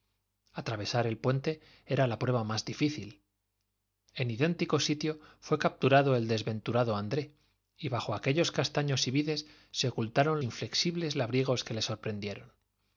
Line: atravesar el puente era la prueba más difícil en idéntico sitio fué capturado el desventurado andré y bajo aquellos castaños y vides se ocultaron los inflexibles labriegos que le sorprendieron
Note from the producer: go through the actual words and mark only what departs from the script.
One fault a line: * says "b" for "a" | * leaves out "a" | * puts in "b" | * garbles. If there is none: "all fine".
* leaves out "los"